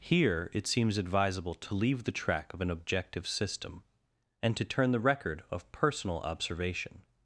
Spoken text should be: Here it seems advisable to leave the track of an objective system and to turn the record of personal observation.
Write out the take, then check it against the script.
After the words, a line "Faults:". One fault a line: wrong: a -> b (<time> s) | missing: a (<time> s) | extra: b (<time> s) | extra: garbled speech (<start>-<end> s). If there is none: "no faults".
Here it seems advisable to leave the track of an objective system and to turn the record of personal observation.
Faults:
no faults